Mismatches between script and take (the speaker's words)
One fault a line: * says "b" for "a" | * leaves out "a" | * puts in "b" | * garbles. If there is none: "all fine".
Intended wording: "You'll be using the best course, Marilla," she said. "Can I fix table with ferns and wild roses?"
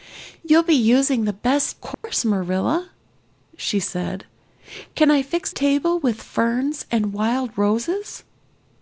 all fine